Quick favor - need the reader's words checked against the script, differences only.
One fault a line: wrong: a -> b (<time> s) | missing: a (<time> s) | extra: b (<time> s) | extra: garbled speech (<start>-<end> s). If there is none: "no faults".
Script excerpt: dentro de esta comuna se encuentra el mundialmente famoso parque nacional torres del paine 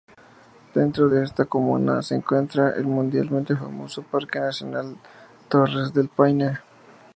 no faults